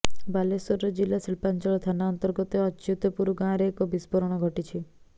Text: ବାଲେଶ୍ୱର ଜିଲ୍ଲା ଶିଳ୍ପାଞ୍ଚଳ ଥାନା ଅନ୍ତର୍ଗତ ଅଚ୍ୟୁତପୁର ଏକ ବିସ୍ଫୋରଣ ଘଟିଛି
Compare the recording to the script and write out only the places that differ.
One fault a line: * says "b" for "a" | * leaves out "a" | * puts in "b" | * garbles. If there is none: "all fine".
* puts in "ଗାଁରେ"